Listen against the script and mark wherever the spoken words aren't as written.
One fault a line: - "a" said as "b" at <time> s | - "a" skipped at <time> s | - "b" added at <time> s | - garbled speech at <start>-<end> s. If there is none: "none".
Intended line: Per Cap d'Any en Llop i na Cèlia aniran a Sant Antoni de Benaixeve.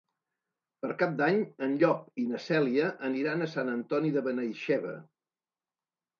none